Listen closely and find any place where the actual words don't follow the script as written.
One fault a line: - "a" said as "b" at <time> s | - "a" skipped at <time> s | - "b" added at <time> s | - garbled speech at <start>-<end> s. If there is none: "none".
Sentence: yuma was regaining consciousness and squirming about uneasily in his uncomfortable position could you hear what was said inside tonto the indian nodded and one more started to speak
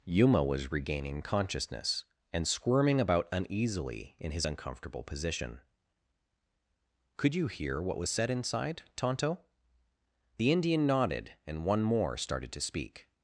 none